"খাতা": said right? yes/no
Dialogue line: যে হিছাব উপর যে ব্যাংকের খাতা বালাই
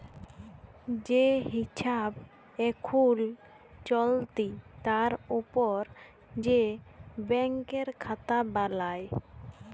yes